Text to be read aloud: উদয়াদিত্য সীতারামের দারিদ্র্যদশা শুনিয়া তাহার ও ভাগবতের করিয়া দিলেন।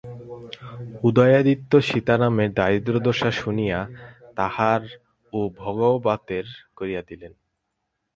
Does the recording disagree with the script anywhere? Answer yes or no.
no